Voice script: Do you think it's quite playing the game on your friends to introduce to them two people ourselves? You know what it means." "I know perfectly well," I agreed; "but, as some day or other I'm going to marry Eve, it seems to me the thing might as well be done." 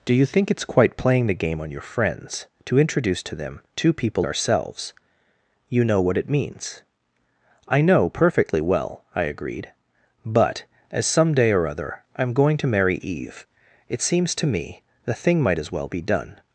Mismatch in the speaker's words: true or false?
false